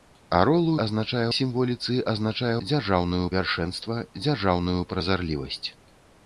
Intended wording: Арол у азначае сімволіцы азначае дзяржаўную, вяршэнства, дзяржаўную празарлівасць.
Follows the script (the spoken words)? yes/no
yes